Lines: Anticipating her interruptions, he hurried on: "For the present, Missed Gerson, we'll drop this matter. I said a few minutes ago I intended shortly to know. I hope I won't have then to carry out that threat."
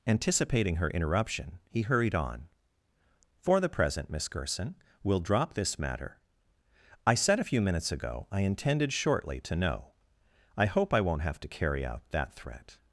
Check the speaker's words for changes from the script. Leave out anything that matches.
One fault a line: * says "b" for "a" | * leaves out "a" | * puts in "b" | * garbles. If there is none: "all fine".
* says "interruption" for "interruptions"
* says "Miss" for "Missed"
* leaves out "then"